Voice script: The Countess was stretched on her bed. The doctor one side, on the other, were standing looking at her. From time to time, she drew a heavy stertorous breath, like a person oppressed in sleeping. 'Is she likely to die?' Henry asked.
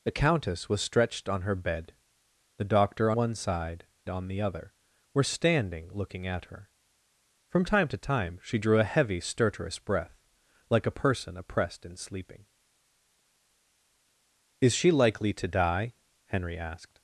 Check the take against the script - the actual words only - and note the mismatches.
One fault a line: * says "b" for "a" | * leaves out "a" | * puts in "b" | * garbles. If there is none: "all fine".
all fine